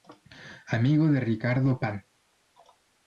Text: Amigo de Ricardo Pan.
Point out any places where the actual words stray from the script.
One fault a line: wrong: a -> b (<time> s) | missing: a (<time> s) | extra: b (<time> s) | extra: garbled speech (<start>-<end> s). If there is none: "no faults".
no faults